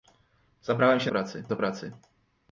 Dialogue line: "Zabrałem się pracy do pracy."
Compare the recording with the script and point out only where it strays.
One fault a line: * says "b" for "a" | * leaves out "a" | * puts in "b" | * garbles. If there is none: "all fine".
all fine